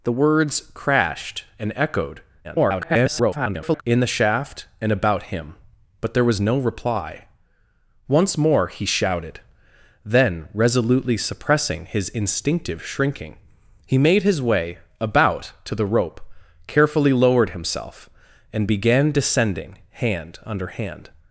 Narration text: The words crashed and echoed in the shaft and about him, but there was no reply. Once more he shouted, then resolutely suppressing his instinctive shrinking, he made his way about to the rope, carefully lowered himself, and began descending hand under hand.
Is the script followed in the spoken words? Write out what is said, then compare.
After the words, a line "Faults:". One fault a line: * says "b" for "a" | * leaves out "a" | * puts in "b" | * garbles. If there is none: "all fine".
The words crashed and echoed [garbled] in the shaft and about him, but there was no reply. Once more he shouted, then resolutely suppressing his instinctive shrinking, he made his way about to the rope, carefully lowered himself, and began descending hand under hand.
Faults:
* garbles